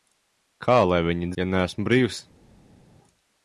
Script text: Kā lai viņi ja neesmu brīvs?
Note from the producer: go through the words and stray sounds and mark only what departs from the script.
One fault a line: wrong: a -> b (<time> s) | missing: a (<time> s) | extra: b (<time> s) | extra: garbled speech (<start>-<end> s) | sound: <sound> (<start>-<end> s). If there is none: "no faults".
no faults